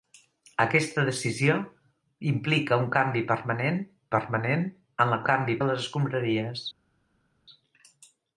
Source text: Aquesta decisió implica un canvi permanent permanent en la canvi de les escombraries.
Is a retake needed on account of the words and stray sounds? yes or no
no